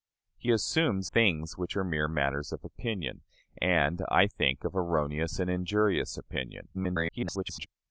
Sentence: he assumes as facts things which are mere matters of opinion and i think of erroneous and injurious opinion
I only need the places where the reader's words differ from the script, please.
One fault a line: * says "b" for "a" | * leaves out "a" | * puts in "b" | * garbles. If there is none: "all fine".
* leaves out "as facts"
* garbles